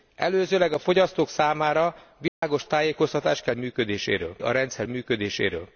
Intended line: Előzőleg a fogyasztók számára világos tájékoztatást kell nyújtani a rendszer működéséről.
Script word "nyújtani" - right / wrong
wrong